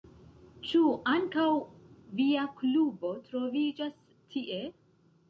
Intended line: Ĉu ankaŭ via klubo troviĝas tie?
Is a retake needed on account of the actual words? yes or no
no